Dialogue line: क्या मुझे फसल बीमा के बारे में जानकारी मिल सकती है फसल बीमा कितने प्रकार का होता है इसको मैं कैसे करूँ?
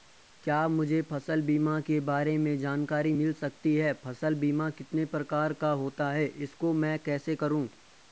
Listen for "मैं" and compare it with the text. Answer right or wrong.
right